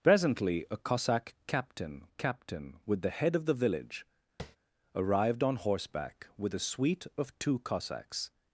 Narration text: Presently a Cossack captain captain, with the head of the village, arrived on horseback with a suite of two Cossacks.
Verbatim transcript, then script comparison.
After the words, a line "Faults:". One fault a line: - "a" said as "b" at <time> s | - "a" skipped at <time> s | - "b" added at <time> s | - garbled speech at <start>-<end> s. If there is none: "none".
Presently a Cossack captain captain, with the head of the village, arrived on horseback with a suite of two Cossacks.
Faults:
none